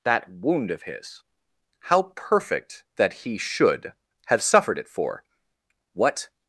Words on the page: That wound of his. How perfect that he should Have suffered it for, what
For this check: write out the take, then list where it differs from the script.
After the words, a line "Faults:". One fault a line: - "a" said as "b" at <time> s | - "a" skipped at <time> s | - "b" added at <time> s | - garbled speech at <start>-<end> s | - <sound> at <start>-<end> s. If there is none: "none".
That wound of his. How perfect that he should Have suffered it for, what
Faults:
none